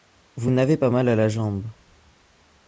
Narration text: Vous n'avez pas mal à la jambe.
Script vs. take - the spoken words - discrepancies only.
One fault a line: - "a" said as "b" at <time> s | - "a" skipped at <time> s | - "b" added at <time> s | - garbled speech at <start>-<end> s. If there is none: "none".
none